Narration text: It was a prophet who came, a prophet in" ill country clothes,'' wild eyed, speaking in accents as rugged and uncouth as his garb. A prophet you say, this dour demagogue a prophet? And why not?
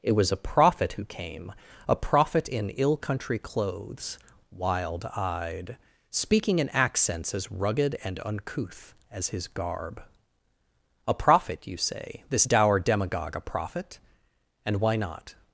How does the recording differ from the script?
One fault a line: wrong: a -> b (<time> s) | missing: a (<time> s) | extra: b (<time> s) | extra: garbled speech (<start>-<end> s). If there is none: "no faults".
no faults